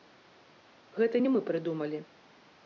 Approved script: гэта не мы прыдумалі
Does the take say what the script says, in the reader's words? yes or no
yes